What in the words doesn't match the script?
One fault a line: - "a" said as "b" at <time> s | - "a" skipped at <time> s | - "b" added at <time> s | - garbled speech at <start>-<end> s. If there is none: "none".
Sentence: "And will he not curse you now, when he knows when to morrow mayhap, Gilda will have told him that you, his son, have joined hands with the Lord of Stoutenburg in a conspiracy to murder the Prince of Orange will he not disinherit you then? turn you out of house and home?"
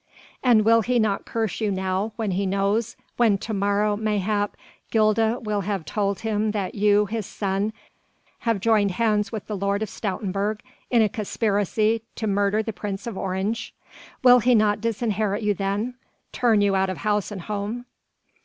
none